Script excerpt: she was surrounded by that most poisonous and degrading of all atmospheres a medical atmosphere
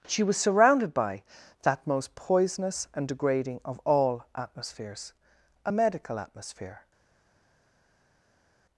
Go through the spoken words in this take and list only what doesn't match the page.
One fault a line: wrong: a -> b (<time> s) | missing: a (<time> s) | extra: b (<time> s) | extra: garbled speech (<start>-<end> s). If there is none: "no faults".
no faults